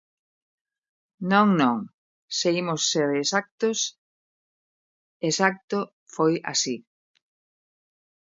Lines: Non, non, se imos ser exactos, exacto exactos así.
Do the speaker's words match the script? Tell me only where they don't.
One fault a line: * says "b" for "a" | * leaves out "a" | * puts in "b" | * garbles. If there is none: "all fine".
* says "foi" for "exactos"